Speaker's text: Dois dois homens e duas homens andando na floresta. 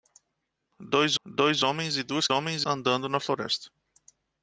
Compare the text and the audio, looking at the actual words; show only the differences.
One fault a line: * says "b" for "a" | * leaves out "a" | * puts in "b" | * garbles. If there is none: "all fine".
all fine